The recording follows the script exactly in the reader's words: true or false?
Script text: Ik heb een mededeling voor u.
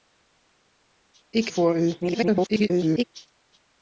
false